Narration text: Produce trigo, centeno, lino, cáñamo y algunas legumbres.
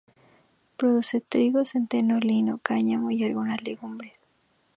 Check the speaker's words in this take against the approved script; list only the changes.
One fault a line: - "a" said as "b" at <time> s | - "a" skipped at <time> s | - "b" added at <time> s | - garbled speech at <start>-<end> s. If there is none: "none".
none